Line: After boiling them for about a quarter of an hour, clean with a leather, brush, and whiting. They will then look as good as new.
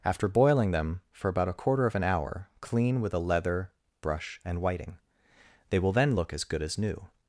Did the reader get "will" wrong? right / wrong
right